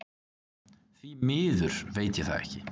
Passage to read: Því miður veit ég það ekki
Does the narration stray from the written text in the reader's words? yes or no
no